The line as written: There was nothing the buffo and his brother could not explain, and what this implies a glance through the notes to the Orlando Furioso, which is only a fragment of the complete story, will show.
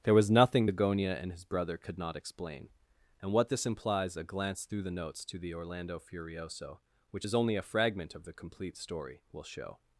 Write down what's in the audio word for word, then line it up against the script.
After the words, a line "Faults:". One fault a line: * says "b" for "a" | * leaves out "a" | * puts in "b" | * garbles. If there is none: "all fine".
There was nothing the gonia and his brother could not explain, and what this implies a glance through the notes to the Orlando Furioso, which is only a fragment of the complete story, will show.
Faults:
* says "gonia" for "buffo"